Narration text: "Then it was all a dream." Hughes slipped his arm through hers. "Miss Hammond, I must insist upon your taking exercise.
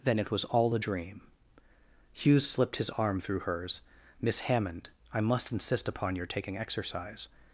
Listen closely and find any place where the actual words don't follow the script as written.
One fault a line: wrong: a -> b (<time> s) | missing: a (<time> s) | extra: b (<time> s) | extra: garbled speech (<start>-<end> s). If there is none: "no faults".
no faults